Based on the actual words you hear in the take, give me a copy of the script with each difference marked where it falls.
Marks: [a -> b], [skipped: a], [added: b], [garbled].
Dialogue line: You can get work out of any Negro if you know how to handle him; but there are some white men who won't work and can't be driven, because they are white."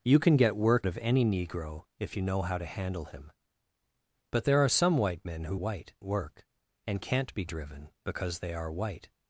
You can get work [skipped: out] of any Negro if you know how to handle him; but there are some white men who [won't -> white] work and can't be driven, because they are white."